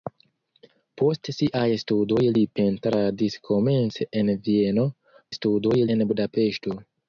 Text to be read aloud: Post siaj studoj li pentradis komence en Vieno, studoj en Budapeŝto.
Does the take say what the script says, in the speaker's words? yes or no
yes